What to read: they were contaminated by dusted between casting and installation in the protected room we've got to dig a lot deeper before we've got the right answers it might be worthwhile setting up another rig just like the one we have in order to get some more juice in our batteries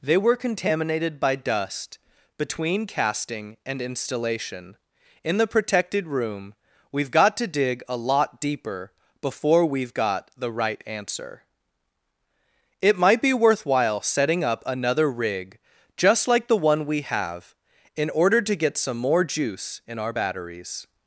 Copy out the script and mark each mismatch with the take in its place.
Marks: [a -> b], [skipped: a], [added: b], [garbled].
they were contaminated by [dusted -> dust] between casting and installation in the protected room we've got to dig a lot deeper before we've got the right [answers -> answer] it might be worthwhile setting up another rig just like the one we have in order to get some more juice in our batteries